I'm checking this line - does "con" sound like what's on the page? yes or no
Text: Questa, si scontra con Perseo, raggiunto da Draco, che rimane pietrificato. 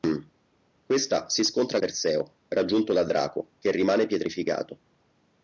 no